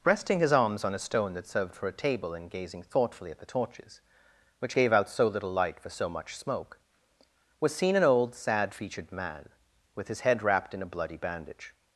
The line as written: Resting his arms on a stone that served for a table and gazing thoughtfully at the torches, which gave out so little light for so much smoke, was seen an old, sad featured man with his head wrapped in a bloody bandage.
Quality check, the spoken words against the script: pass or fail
pass